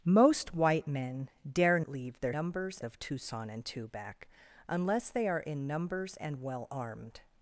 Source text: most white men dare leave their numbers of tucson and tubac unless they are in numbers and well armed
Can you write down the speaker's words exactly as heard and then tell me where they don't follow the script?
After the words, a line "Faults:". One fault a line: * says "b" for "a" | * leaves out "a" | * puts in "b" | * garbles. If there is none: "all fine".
most white men dare leave their numbers of tucson and tubac unless they are in numbers and well armed
Faults:
all fine